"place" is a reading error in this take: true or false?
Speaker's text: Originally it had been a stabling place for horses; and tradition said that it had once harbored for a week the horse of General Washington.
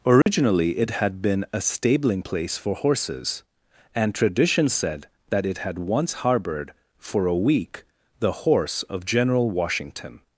false